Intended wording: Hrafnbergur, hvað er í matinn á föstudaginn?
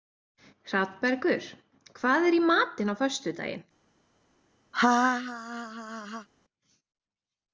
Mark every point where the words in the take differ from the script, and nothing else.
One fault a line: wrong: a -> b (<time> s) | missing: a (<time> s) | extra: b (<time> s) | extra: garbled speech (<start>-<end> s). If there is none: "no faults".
no faults